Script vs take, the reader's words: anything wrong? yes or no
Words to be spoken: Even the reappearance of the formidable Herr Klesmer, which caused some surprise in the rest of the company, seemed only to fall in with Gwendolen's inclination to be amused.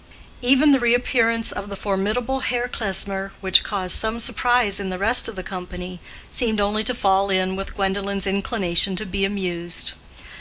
no